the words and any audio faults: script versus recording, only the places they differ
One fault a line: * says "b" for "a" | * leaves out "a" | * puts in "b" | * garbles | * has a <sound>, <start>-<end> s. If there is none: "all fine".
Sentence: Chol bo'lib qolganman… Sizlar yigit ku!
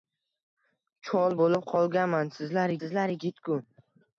* puts in "Sizlar"